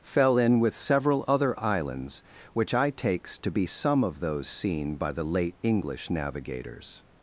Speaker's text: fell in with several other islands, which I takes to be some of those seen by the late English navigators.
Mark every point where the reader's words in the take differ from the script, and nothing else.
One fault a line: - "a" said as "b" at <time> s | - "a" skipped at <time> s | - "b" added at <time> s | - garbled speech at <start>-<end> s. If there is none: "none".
none